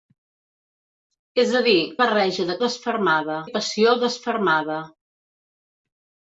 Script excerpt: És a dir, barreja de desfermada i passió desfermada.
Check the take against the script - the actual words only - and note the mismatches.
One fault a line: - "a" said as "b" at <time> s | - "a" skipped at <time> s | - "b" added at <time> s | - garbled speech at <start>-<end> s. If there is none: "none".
none